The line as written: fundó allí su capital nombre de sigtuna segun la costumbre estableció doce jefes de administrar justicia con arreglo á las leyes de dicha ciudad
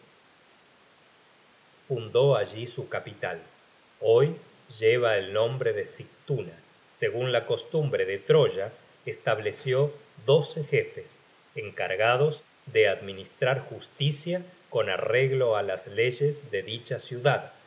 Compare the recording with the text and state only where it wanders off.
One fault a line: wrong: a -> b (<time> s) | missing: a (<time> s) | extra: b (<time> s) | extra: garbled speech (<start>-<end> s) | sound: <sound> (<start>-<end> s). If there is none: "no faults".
extra: hoy lleva el (4.0 s)
extra: de troya (8.1 s)
extra: encargados (11.5 s)